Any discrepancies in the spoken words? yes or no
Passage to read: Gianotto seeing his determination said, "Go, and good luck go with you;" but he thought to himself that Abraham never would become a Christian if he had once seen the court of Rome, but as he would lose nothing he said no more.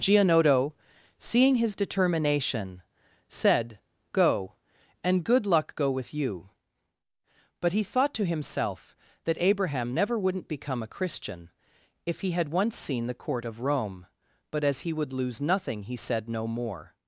yes